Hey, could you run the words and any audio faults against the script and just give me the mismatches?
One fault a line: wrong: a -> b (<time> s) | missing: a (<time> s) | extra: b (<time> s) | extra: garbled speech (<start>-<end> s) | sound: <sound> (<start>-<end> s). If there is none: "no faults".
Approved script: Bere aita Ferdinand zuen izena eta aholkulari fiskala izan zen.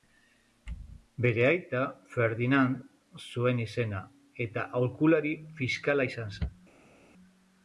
no faults